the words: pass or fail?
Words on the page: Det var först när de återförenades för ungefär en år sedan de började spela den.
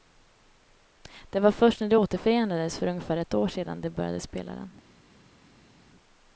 fail